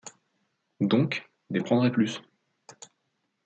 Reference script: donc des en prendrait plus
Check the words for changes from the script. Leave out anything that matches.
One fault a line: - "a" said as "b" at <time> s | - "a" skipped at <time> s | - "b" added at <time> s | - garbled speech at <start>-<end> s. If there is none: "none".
none